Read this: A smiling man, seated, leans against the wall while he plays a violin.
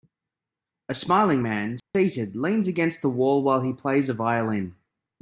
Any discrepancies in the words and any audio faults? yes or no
yes